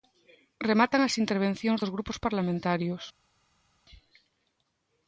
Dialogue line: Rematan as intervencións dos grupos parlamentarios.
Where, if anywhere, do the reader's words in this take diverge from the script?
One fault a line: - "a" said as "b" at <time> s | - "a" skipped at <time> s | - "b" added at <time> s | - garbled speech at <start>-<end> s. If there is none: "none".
none